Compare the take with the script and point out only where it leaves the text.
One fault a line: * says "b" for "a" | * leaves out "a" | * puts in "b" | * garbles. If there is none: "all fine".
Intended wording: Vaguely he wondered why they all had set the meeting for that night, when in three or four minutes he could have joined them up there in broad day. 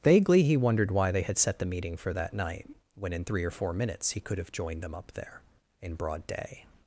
* leaves out "all"